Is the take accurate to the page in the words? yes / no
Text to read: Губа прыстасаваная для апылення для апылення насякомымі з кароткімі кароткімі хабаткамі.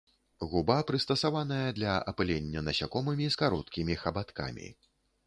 no